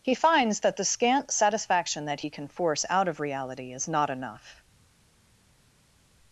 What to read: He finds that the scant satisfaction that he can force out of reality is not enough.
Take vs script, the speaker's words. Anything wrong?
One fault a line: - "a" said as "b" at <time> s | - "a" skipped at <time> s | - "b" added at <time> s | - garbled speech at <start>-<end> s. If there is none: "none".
none